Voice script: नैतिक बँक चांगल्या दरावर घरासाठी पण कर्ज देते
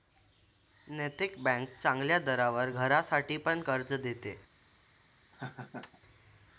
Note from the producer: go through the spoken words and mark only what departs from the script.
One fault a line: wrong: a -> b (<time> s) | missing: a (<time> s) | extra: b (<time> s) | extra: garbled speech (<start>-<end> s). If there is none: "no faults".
no faults